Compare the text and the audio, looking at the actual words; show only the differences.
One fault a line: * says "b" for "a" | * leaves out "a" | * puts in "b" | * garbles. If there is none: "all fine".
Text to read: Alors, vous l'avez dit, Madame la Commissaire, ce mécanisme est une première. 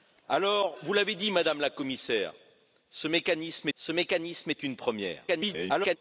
* puts in "ce mécanisme"
* garbles